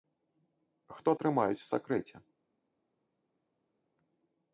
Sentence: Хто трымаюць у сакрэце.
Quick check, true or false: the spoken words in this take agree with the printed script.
true